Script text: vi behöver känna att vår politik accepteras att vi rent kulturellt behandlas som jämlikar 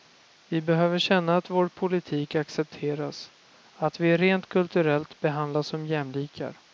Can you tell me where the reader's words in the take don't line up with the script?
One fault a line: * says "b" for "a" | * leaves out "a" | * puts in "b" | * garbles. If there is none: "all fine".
all fine